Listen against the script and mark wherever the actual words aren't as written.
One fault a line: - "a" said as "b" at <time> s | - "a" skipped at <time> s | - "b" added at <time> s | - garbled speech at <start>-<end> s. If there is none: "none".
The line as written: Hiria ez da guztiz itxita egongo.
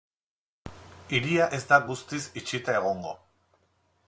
none